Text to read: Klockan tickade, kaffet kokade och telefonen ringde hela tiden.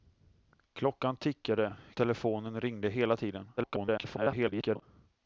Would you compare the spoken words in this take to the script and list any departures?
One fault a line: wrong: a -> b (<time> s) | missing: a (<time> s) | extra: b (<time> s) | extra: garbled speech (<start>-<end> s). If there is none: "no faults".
missing: kaffet kokade och (1.8 s)
extra: garbled speech (3.6-4.8 s)